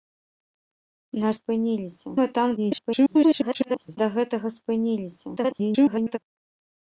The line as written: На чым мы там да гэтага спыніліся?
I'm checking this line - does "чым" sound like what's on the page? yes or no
no